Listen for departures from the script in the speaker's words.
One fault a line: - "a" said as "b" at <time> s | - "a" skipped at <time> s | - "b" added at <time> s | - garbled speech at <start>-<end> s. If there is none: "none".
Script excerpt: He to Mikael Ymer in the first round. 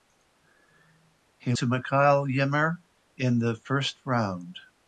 none